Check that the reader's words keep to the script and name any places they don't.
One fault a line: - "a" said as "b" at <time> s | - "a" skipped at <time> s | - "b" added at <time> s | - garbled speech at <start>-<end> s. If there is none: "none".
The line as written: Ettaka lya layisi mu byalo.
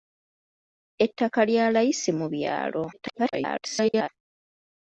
- garbled speech at 2.9-4.1 s